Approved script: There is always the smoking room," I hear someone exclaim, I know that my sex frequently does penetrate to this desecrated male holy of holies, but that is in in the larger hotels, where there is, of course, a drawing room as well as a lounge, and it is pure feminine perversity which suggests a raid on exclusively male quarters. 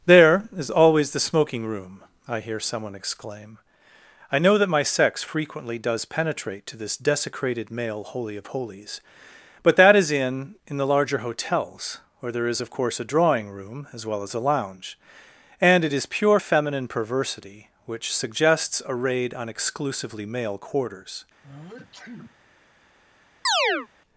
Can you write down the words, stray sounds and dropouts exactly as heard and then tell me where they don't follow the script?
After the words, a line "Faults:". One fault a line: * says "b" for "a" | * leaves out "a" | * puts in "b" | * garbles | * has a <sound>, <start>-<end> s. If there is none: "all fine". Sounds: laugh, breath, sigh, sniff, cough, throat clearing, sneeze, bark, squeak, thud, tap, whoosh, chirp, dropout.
There is always the smoking room," I hear someone exclaim, I know that my sex frequently does penetrate to this desecrated male holy of holies, but that is in in the larger hotels, where there is, of course, a drawing room as well as a lounge, and it is pure feminine perversity which suggests a raid on exclusively male quarters.
Faults:
* has a sneeze, 21.4-22.4 s
* has a chirp, 23.4-23.9 s